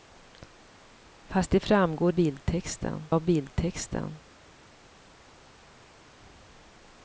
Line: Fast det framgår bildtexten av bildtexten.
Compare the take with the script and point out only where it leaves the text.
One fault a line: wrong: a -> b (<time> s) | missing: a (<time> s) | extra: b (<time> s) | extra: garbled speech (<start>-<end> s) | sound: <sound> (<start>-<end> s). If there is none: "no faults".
no faults